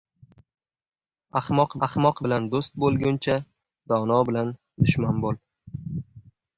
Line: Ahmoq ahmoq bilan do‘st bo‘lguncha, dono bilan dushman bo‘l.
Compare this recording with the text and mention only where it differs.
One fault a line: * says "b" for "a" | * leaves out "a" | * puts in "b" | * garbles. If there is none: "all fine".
all fine